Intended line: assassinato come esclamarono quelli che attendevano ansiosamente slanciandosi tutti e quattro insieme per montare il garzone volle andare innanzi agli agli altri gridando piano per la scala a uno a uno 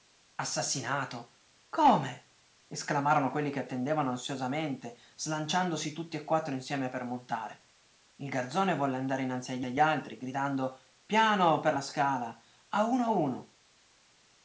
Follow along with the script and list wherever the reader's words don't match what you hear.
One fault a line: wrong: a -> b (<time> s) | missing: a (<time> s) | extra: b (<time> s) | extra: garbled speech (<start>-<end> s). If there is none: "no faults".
no faults